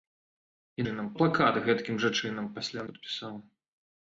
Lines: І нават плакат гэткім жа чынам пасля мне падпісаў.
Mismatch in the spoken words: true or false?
true